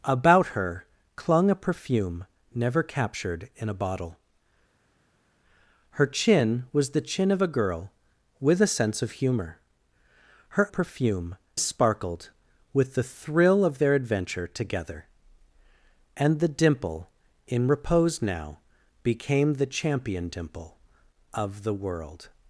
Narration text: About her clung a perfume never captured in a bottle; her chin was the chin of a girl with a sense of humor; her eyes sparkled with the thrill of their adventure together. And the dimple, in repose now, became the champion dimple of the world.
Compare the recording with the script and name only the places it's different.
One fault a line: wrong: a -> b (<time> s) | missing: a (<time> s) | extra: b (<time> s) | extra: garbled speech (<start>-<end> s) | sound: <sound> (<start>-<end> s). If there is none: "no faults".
wrong: eyes -> perfume (10.7 s)